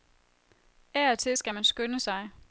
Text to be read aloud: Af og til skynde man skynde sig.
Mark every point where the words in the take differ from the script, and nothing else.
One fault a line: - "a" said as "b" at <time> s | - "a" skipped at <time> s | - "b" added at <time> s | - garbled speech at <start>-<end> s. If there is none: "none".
- "skynde" said as "skal" at 1.3 s